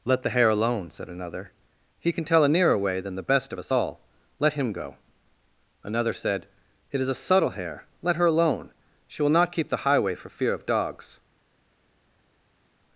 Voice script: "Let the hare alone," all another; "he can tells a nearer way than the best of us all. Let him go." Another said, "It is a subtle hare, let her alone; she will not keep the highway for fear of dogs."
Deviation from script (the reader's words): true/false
true